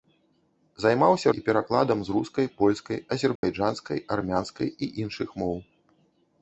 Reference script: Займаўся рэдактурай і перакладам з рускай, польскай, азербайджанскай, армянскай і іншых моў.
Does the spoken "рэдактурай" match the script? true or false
false